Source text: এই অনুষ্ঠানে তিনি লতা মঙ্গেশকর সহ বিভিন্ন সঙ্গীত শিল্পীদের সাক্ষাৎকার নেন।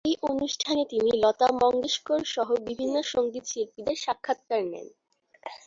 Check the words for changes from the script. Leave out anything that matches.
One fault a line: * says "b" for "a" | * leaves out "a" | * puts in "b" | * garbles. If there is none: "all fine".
all fine